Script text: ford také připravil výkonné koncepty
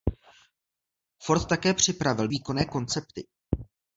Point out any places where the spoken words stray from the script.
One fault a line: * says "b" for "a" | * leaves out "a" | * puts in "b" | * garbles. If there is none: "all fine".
all fine